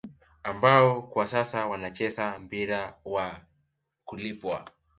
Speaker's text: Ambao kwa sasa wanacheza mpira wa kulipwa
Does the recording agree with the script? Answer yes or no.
yes